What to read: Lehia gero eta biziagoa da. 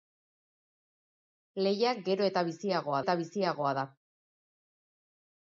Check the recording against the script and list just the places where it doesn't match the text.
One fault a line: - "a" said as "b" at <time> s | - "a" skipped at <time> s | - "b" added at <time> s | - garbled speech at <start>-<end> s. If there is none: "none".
- "eta biziagoa" added at 3.0 s